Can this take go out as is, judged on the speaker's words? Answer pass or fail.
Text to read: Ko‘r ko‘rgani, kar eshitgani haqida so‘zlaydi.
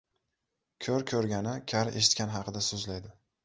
pass